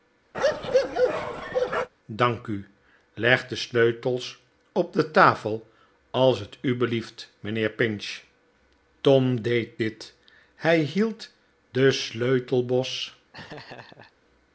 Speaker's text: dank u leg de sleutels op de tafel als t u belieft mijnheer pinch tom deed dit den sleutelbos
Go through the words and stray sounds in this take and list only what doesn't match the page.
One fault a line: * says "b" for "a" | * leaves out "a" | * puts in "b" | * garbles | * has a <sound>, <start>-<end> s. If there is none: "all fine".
* has a bark, 0.3-1.9 s
* puts in "hij hield"
* has a laugh, 13.3-14.1 s